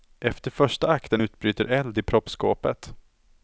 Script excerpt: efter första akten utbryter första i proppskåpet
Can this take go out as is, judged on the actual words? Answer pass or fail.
fail